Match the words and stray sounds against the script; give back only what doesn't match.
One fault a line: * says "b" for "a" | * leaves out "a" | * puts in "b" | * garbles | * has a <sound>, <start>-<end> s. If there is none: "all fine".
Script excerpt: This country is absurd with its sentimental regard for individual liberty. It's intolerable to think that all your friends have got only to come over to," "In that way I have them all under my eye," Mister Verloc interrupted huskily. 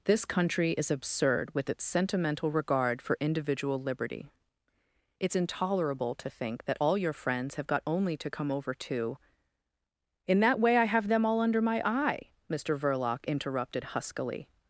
all fine